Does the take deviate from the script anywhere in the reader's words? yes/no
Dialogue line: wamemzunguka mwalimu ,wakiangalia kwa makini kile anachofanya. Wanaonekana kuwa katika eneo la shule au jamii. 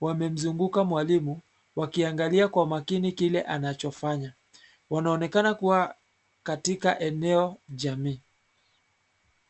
yes